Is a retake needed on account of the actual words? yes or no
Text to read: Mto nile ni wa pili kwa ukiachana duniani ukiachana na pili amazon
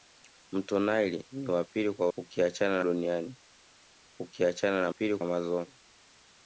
no